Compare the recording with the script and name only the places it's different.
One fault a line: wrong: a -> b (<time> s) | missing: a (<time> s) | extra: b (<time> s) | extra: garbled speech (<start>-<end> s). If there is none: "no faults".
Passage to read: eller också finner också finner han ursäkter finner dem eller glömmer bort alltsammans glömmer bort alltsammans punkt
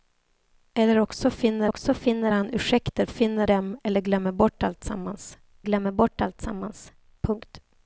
no faults